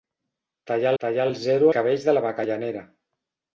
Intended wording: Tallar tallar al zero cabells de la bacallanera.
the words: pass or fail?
pass